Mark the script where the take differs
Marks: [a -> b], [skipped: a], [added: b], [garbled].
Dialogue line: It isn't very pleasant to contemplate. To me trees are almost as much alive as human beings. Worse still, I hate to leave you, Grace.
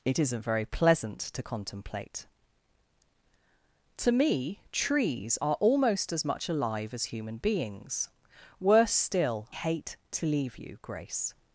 It isn't very pleasant to contemplate. To me trees are almost as much alive as human beings. Worse still, [skipped: I] hate to leave you, Grace.